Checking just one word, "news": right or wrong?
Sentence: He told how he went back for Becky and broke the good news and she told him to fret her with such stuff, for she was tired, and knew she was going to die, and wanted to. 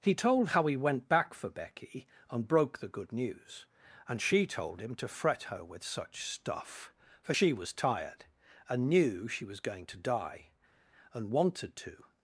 right